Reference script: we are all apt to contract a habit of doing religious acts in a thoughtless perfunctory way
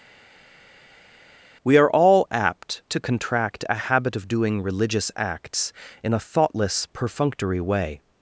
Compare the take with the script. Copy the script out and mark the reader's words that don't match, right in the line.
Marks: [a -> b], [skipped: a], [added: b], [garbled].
we are all apt to contract a habit of doing religious acts in a thoughtless perfunctory way